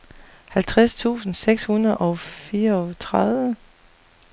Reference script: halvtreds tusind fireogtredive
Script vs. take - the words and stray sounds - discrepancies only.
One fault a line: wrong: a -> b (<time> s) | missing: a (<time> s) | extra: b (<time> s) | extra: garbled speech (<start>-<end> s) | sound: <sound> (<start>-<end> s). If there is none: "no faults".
extra: seks hundrede og (1.3 s)